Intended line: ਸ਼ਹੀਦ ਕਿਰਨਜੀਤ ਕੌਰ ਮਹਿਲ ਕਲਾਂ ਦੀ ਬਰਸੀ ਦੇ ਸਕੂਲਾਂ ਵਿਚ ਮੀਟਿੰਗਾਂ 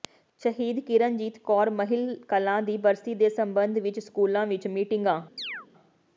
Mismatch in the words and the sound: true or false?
true